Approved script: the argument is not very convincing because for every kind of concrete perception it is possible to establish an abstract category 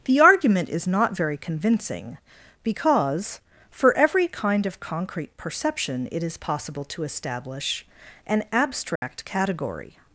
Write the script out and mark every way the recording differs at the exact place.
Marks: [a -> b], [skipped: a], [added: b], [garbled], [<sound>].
the argument is not very convincing because for every kind of concrete perception it is possible to establish an abstract [dropout] category